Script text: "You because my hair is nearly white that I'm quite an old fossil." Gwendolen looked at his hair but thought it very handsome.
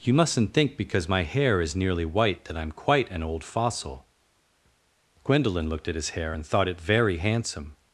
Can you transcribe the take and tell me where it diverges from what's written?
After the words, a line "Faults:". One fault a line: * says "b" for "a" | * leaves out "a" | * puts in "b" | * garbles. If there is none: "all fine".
"You mustn't think because my hair is nearly white that I'm quite an old fossil." Gwendolen looked at his hair and thought it very handsome.
Faults:
* puts in "mustn't think"
* says "and" for "but"